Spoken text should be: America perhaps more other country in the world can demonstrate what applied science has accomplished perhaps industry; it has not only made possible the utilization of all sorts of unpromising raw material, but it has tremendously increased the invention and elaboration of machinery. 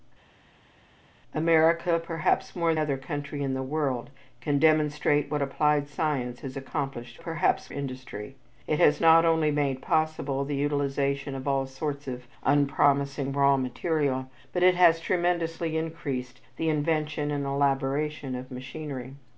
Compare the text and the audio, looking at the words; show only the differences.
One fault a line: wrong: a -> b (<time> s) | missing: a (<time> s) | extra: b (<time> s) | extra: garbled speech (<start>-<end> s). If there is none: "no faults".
no faults